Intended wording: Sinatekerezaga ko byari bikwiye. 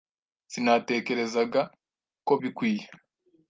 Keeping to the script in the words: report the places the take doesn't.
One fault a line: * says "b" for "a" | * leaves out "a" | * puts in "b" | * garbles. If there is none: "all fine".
* leaves out "byari"